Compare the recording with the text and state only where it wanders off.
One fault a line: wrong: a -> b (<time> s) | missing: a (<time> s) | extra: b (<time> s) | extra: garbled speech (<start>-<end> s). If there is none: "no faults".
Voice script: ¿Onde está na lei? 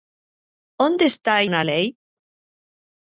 no faults